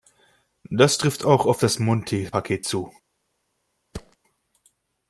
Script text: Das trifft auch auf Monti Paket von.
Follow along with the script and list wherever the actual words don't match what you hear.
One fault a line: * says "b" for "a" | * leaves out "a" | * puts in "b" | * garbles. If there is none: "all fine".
* puts in "das"
* says "zu" for "von"